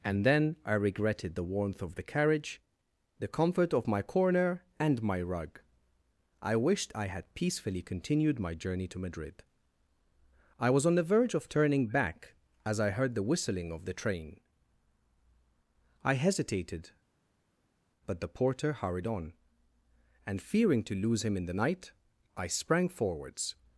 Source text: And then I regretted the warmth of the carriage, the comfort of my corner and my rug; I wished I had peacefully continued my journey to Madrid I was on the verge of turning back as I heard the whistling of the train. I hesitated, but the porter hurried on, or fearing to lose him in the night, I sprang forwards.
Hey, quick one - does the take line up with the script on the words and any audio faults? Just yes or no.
no